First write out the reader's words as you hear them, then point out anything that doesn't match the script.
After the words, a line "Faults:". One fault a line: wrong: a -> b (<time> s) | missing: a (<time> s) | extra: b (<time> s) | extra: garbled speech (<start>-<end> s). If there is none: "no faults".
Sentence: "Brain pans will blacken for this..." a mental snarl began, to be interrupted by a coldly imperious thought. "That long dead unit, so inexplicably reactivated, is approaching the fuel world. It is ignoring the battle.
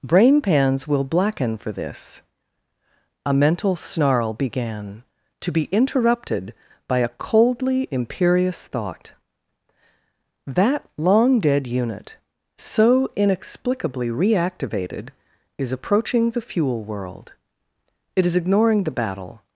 "Brain pans will blacken for this..." a mental snarl began, to be interrupted by a coldly imperious thought. "That long dead unit, so inexplicably reactivated, is approaching the fuel world. It is ignoring the battle.
Faults:
no faults